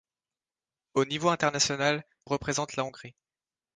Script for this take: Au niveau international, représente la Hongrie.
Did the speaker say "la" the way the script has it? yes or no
yes